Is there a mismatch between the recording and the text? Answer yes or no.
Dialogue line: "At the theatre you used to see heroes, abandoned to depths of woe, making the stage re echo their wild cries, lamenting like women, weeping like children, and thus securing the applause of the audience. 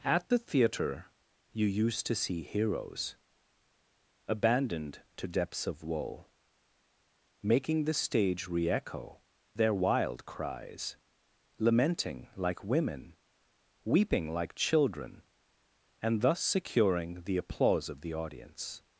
no